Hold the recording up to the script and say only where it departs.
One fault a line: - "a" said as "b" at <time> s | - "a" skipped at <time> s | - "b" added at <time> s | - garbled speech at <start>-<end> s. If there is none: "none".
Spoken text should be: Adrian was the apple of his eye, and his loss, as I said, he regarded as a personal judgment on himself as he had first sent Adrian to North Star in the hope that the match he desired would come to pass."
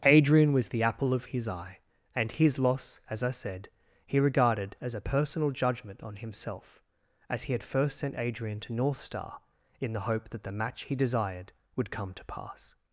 none